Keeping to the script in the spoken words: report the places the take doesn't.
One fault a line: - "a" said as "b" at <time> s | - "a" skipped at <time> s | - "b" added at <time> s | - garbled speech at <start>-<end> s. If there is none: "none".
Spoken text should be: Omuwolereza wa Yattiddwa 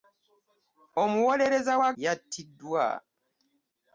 none